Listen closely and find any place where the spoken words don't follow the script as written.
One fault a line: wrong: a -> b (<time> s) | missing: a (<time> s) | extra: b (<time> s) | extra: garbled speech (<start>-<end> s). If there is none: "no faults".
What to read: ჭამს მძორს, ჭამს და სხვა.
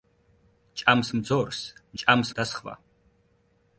no faults